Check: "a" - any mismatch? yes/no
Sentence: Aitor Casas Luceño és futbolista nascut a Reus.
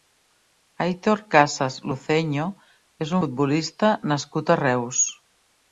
no